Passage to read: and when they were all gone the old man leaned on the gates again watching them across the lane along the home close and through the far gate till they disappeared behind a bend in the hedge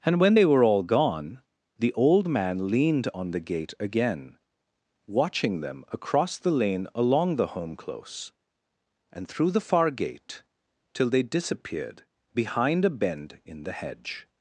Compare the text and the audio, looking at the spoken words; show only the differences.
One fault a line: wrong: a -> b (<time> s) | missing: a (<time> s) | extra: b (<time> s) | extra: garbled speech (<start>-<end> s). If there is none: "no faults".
wrong: gates -> gate (3.4 s)